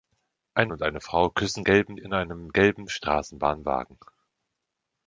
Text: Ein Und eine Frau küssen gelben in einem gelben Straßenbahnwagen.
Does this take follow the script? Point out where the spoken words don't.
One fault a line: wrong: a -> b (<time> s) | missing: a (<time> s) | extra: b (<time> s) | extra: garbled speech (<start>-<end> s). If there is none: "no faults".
no faults